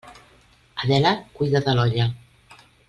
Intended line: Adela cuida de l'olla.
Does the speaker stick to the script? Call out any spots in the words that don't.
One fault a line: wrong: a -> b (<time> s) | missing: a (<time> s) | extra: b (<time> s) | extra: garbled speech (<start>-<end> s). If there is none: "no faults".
no faults